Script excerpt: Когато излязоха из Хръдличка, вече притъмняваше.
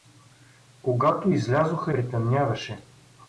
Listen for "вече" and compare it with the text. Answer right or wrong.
wrong